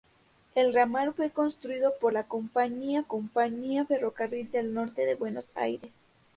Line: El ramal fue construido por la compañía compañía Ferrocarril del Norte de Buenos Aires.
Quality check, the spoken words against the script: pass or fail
pass